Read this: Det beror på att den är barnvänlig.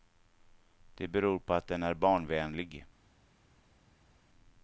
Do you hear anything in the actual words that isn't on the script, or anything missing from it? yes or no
no